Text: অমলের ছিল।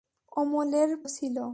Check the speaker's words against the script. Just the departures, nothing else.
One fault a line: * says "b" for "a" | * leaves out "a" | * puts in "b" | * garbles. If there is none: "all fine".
all fine